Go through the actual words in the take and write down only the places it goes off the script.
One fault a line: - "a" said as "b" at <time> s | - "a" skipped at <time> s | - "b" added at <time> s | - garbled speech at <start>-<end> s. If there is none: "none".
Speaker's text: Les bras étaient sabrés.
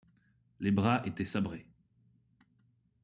none